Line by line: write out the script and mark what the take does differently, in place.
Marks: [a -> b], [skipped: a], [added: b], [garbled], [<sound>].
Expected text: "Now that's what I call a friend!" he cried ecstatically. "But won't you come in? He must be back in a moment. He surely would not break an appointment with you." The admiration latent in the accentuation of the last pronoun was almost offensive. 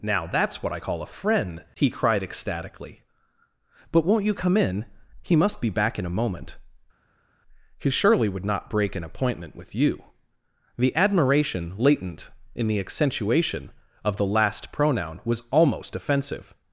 "Now that's what I call a friend!" he cried ecstatically. "But won't you come in? He must be back in a moment. He surely would not break an appointment with you." The admiration latent in the accentuation of the last pronoun was almost offensive.